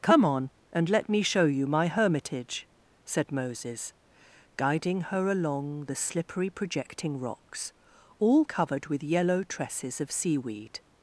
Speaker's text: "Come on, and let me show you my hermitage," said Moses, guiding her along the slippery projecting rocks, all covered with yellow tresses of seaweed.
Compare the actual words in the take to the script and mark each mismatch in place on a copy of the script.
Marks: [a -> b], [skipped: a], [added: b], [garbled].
"Come on, and let me show you my hermitage," said Moses, guiding her along the slippery projecting rocks, all covered with yellow tresses of seaweed.